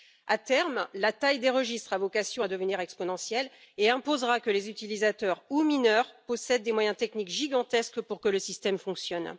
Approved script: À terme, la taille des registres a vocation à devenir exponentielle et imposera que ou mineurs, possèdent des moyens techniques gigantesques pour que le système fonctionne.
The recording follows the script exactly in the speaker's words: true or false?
false